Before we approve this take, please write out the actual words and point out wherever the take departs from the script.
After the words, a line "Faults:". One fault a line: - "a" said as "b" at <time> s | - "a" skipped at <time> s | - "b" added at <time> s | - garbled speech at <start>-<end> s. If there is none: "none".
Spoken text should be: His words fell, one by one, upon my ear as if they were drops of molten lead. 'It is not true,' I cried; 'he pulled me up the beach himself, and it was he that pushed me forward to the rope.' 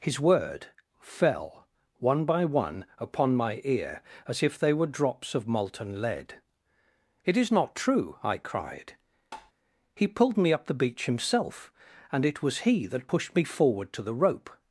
His word fell, one by one, upon my ear as if they were drops of molten lead. 'It is not true,' I cried; 'he pulled me up the beach himself, and it was he that pushed me forward to the rope.'
Faults:
- "words" said as "word" at 0.2 s